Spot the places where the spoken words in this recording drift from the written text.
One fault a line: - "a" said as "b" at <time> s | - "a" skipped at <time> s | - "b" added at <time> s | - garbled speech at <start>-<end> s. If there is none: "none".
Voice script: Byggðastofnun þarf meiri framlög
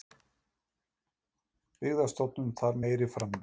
none